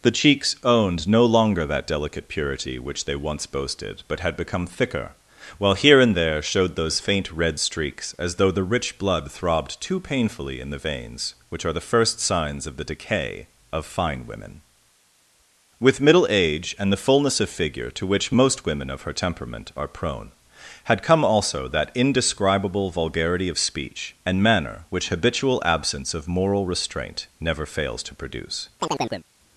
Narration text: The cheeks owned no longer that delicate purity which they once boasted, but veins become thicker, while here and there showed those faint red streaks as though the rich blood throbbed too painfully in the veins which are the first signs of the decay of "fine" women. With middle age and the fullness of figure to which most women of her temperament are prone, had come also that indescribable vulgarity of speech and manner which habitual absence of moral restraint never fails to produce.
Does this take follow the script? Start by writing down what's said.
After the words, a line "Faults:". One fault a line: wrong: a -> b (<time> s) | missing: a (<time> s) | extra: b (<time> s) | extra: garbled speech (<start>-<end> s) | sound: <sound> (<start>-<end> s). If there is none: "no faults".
The cheeks owned no longer that delicate purity which they once boasted, but had become thicker, while here and there showed those faint red streaks as though the rich blood throbbed too painfully in the veins which are the first signs of the decay of "fine" women. With middle age and the fullness of figure to which most women of her temperament are prone, had come also that indescribable vulgarity of speech and manner which habitual absence of moral restraint never fails to produce.
Faults:
wrong: veins -> had (4.2 s)
sound: chirp (28.8-29.3 s)